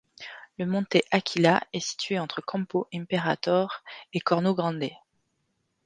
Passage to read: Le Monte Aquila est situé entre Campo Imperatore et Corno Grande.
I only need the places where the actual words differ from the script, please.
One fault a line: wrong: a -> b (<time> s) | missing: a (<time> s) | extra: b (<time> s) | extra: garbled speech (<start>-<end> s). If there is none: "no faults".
no faults